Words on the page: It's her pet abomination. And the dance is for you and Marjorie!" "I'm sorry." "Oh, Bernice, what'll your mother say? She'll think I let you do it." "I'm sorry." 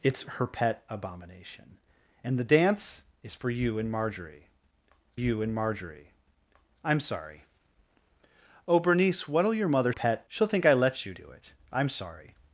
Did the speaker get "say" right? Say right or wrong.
wrong